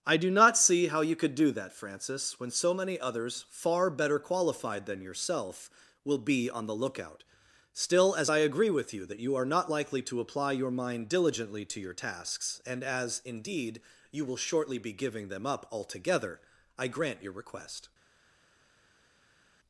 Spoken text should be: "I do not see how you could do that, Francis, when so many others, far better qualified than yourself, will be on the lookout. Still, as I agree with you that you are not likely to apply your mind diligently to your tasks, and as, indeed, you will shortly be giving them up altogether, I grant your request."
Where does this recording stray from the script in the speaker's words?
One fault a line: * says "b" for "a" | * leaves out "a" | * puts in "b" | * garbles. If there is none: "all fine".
all fine